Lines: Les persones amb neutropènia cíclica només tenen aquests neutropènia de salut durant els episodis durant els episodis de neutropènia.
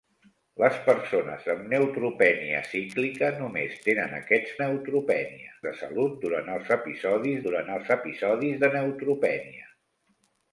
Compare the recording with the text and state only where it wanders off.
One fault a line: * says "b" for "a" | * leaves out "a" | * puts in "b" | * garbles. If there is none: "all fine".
all fine